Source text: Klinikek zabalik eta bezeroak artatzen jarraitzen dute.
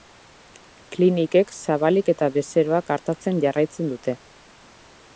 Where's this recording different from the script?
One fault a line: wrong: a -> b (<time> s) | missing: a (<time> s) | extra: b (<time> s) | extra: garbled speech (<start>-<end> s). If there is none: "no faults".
no faults